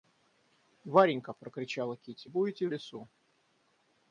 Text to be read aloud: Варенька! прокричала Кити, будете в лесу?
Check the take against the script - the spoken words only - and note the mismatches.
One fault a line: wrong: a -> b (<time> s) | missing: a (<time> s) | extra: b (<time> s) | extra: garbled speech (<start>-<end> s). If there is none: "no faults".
no faults